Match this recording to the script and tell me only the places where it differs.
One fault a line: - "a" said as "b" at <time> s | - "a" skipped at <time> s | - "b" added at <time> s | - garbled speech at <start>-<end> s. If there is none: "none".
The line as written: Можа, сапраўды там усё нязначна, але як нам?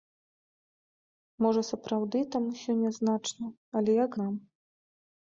none